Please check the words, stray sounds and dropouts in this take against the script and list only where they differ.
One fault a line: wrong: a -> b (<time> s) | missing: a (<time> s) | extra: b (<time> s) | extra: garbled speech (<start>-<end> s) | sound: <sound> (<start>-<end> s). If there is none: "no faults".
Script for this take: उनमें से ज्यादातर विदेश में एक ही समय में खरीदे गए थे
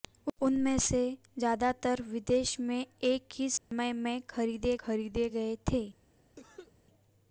sound: dropout (3.6-3.7 s)
extra: खरीदे (4.8 s)
sound: cough (6.4-6.7 s)